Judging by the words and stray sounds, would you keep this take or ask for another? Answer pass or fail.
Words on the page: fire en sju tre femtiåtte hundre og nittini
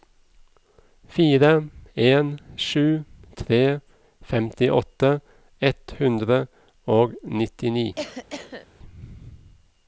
fail